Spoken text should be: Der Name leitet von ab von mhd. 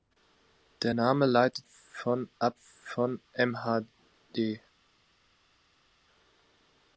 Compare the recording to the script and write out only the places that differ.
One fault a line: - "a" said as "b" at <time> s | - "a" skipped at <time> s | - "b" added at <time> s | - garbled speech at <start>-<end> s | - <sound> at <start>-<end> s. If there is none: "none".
none